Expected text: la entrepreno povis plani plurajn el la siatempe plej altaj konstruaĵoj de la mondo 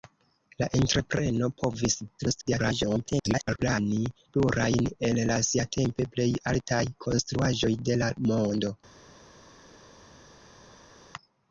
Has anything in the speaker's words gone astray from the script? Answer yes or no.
yes